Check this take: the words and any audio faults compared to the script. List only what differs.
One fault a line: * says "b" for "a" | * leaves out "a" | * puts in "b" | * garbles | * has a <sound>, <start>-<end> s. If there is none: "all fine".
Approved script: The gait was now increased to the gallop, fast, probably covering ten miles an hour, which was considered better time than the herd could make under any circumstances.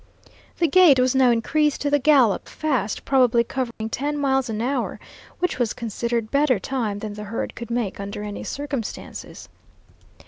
* has a dropout, 3.7-3.8 s